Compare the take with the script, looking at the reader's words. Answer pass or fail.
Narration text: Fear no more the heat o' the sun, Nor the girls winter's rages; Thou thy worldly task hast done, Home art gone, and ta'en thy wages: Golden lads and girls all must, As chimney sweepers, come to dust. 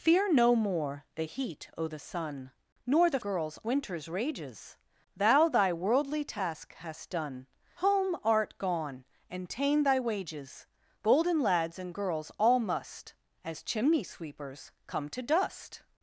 pass